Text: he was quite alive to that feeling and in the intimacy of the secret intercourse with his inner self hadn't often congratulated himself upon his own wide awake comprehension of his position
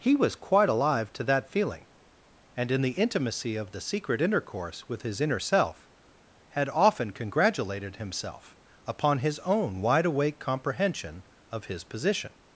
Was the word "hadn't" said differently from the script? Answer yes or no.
yes